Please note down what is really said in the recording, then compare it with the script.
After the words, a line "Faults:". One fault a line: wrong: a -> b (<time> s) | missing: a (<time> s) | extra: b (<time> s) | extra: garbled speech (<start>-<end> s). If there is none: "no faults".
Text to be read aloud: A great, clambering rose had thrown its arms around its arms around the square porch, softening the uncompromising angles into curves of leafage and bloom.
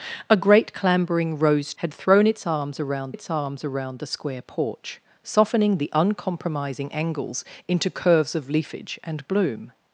A great, clambering rose had thrown its arms around its arms around the square porch, softening the uncompromising angles into curves of leafage and bloom.
Faults:
no faults